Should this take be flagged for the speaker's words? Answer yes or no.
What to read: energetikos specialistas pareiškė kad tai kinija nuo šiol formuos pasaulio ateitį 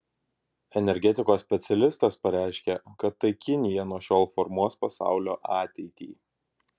no